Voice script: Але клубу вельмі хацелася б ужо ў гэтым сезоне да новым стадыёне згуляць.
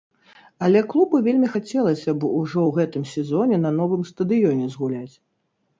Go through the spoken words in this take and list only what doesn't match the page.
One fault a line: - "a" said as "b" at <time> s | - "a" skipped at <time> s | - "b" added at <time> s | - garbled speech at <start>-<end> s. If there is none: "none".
- "да" said as "на" at 3.6 s